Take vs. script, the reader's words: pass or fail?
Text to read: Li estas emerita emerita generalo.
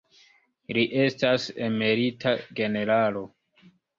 fail